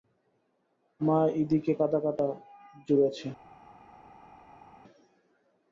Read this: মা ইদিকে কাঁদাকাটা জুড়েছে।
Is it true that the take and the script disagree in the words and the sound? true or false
false